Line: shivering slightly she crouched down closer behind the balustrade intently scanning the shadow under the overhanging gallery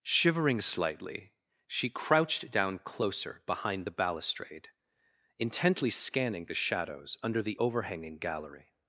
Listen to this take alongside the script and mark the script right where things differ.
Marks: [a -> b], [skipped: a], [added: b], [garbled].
shivering slightly she crouched down closer behind the balustrade intently scanning the [shadow -> shadows] under the overhanging gallery